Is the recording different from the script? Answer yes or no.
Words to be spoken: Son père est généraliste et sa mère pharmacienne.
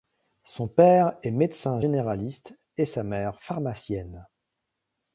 yes